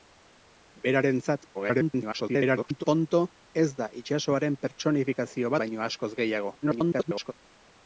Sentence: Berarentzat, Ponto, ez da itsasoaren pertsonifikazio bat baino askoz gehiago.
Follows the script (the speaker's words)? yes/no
no